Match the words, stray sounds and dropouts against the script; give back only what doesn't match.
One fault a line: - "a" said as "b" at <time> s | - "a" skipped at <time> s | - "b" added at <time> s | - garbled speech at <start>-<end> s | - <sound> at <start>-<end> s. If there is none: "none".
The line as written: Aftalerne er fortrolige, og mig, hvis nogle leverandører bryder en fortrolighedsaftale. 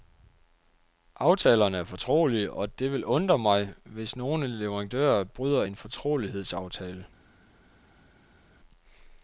- "det vil undre" added at 2.8 s